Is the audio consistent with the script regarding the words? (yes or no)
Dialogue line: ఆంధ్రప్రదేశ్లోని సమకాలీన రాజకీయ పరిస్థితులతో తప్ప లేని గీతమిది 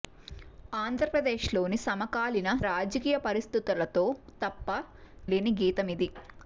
yes